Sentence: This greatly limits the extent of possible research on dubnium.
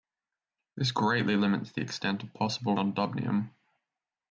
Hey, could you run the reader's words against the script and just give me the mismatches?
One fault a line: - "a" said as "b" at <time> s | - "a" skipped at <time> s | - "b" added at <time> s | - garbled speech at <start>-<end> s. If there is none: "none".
- "research" skipped at 2.8 s